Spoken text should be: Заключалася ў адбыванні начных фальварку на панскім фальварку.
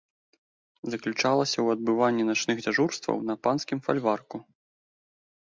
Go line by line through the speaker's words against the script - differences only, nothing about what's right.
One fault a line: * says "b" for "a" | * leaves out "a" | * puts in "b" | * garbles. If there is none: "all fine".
* says "дзяжурстваў" for "фальварку"